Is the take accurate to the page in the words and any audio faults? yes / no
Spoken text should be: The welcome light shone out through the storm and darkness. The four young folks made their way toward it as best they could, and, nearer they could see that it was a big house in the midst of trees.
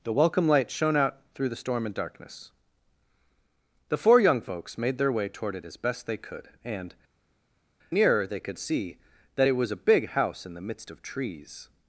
yes